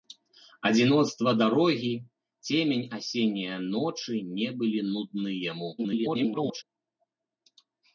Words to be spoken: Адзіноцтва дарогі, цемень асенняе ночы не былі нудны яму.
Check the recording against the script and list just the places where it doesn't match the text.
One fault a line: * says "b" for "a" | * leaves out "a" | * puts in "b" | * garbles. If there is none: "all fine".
* garbles